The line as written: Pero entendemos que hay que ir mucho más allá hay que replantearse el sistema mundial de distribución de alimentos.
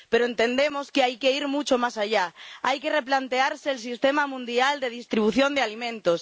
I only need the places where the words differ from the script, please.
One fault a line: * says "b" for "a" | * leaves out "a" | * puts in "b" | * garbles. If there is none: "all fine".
all fine